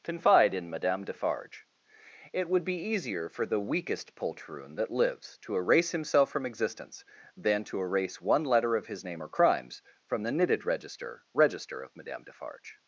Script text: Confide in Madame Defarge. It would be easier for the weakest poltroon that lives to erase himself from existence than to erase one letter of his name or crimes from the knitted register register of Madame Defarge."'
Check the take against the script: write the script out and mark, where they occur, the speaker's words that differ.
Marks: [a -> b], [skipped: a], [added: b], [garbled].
Confide in Madame Defarge. It would be easier for the weakest poltroon that lives to erase himself from existence than to erase one letter of his name or crimes from the knitted register register of Madame Defarge."'